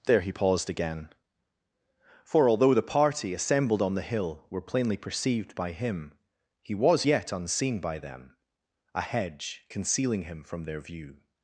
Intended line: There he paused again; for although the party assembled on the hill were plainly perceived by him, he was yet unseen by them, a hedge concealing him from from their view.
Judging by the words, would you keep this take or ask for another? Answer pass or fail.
fail